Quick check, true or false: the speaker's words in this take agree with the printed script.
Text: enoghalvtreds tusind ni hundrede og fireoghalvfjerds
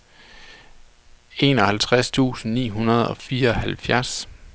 true